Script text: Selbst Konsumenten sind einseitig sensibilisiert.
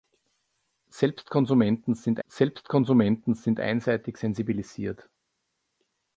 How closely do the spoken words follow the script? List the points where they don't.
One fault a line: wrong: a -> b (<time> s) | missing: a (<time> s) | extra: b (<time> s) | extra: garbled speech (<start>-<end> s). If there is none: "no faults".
extra: selbst Konsumenten sind (2.2 s)